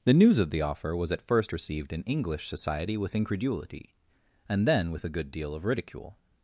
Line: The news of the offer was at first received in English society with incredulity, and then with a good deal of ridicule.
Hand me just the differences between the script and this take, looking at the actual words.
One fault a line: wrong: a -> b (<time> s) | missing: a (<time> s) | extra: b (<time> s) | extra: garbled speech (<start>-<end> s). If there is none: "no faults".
no faults